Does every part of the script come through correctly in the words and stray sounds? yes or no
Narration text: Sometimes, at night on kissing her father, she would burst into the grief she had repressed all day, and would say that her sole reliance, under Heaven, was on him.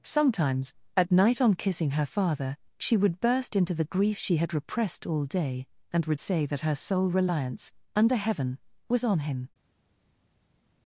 yes